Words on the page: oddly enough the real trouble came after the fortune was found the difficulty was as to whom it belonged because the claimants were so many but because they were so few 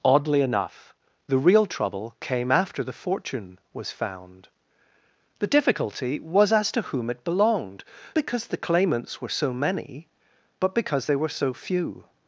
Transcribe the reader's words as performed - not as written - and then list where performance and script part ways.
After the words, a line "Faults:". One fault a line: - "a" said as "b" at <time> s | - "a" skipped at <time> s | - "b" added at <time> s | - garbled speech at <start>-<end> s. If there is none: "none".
oddly enough the real trouble came after the fortune was found the difficulty was as to whom it belonged because the claimants were so many but because they were so few
Faults:
none